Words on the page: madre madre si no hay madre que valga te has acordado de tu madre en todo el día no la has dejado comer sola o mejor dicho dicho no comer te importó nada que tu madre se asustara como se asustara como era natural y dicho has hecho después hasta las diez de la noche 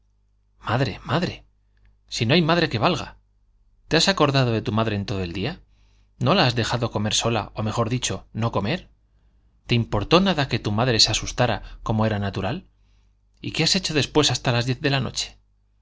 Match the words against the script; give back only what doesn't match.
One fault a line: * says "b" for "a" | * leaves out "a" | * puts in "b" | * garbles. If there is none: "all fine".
* leaves out "dicho"
* leaves out "se asustara como"
* says "qué" for "dicho"